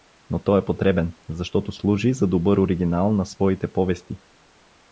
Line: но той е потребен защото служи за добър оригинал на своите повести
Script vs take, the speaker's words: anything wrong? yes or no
no